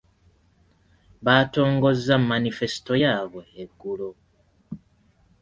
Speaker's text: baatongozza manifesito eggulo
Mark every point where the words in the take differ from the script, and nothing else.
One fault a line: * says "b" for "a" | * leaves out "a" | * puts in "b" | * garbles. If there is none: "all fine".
* puts in "yaabwe"